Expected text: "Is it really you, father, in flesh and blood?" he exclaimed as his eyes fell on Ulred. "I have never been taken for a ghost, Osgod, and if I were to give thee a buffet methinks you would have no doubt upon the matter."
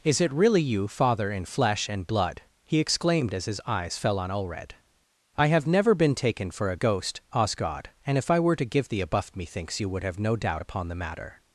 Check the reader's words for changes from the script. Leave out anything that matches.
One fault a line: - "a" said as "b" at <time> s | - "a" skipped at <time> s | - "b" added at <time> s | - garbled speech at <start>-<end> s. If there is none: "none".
- "buffet" said as "buff" at 9.1 s